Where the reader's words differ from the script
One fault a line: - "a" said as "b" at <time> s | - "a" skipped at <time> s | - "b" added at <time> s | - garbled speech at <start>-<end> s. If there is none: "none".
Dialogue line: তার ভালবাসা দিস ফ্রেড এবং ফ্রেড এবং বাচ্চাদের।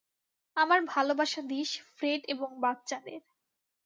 - "তার" said as "আমার" at 0.6 s
- "ফ্রেড এবং" skipped at 2.5 s